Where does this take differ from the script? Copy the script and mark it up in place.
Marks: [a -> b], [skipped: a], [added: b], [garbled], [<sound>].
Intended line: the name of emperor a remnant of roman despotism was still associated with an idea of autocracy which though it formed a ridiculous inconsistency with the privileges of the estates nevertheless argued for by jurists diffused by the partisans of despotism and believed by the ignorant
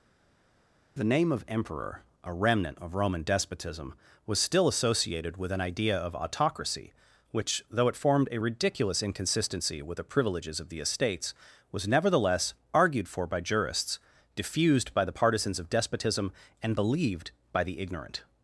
the name of emperor a remnant of roman despotism was still associated with an idea of autocracy which though it formed a ridiculous inconsistency with the privileges of the estates [added: was] nevertheless argued for by jurists diffused by the partisans of despotism and believed by the ignorant